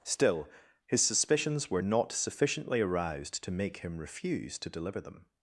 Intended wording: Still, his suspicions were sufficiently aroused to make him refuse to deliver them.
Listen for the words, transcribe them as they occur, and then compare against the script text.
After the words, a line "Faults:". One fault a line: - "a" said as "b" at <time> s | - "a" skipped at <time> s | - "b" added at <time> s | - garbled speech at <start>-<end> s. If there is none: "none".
Still, his suspicions were not sufficiently aroused to make him refuse to deliver them.
Faults:
- "not" added at 1.8 s